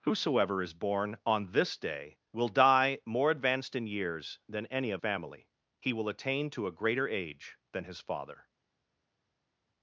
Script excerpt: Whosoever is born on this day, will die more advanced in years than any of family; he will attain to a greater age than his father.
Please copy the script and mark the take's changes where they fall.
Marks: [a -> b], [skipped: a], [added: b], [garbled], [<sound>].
Whosoever is born on this day, will die more advanced in years than any of family; he will attain to a greater age than his father.